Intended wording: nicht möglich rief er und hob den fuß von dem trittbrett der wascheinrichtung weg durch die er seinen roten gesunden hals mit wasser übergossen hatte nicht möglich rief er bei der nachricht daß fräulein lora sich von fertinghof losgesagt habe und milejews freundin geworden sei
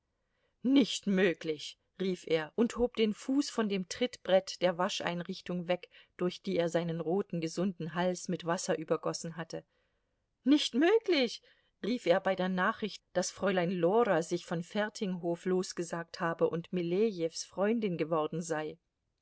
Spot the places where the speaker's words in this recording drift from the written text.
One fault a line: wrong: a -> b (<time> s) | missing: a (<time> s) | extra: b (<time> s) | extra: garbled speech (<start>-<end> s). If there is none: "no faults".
no faults